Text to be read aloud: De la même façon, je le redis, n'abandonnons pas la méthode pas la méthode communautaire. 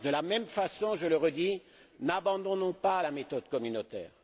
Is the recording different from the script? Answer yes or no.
yes